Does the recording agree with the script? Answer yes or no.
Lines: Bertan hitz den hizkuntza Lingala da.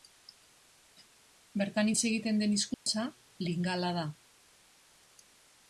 no